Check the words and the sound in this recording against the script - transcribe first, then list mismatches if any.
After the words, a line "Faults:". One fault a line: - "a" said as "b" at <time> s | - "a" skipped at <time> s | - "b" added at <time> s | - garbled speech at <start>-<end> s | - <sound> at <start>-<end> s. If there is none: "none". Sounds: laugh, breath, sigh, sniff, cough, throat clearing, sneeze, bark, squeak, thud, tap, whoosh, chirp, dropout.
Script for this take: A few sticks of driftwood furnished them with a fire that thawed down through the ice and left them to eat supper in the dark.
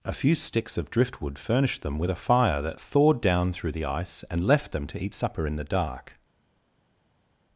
A few sticks of driftwood furnished them with a fire that thawed down through the ice and left them to eat supper in the dark.
Faults:
none